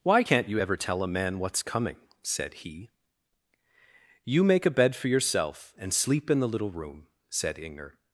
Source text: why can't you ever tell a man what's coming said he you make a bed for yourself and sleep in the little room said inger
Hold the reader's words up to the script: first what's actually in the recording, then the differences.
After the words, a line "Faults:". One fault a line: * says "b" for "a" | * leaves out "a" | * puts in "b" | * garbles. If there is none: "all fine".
why can't you ever tell a man what's coming said he you make a bed for yourself and sleep in the little room said inger
Faults:
all fine